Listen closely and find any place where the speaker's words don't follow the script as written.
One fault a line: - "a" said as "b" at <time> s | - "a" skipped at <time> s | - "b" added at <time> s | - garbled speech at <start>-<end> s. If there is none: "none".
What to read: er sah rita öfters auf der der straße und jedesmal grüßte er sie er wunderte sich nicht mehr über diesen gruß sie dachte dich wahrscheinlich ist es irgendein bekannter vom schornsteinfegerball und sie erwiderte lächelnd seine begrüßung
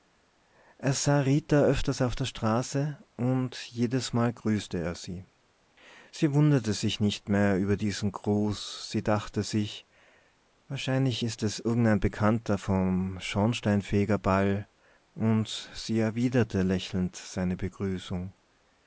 - "der" skipped at 2.2 s
- "er" said as "sie" at 6.1 s
- "dich" said as "sich" at 9.4 s